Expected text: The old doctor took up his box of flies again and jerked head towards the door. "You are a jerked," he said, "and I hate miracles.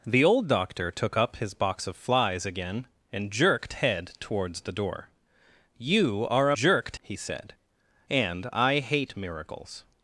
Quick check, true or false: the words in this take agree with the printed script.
true